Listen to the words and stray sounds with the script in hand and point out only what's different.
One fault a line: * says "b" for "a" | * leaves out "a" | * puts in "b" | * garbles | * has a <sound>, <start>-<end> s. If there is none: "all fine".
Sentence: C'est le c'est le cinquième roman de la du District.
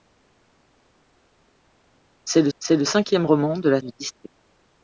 all fine